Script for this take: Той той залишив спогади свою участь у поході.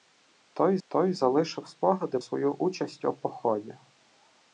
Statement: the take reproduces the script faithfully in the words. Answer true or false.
true